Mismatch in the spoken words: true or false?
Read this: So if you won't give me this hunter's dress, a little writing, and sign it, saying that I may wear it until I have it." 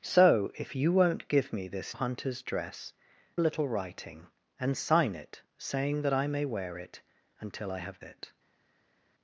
false